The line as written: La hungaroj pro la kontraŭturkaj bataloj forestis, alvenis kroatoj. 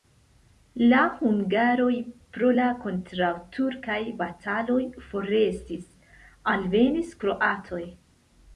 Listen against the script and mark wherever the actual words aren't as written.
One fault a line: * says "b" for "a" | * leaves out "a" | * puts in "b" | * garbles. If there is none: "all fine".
all fine